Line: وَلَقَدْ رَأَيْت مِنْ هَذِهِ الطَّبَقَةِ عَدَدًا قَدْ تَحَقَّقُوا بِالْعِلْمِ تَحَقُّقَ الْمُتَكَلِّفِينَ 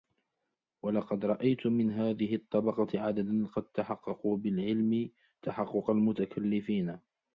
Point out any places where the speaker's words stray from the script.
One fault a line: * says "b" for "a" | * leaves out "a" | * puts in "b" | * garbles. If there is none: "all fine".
all fine